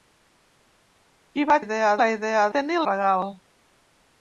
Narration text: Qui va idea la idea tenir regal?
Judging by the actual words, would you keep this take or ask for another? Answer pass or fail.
pass